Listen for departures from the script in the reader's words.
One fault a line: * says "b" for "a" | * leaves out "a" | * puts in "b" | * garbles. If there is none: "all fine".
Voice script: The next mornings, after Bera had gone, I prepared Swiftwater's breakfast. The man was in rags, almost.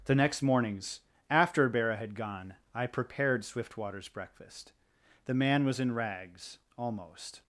all fine